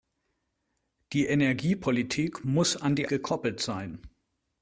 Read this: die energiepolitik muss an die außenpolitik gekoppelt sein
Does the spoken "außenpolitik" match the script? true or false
false